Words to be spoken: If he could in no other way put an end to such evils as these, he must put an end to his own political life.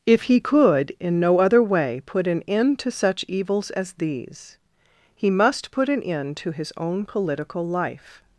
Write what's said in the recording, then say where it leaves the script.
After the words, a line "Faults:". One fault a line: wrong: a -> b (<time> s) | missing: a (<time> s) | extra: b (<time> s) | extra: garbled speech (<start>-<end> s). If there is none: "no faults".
If he could in no other way put an end to such evils as these, he must put an end to his own political life.
Faults:
no faults